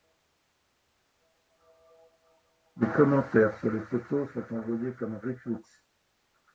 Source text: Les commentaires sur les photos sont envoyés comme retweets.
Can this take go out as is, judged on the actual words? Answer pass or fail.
pass